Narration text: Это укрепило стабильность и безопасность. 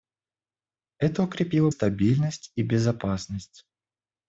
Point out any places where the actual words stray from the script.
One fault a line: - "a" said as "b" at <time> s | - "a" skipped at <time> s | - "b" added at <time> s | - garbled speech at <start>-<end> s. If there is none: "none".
none